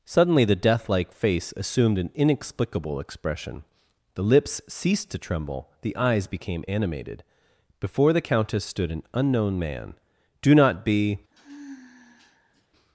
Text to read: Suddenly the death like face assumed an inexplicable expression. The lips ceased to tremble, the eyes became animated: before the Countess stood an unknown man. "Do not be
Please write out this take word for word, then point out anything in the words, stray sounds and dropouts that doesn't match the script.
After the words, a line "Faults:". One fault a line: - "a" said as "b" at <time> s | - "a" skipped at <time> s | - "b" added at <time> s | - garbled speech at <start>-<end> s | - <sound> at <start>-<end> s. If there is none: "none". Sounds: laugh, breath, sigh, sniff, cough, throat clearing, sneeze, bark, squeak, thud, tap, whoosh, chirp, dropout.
Suddenly the death like face assumed an inexplicable expression. The lips ceased to tremble, the eyes became animated: before the Countess stood an unknown man. "Do not be
Faults:
- sigh at 11.3-12.7 s